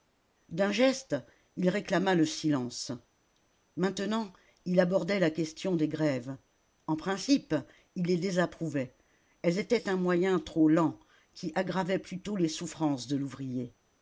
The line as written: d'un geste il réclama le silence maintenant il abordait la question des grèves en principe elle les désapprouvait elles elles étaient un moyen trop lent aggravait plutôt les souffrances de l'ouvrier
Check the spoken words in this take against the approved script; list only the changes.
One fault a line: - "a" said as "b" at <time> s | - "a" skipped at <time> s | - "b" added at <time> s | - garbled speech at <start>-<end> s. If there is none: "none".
- "elle" said as "il" at 8.0 s
- "elles" skipped at 9.6 s
- "qui" added at 11.3 s